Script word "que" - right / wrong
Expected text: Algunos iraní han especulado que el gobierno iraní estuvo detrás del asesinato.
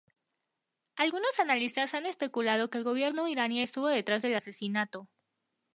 right